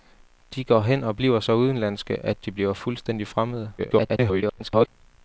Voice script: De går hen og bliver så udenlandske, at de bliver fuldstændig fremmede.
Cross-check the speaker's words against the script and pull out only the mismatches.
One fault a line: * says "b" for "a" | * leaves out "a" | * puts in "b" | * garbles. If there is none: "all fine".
* garbles